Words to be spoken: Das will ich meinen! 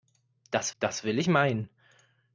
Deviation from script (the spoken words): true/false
true